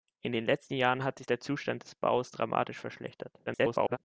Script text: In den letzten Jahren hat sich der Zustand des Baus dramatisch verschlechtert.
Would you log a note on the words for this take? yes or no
yes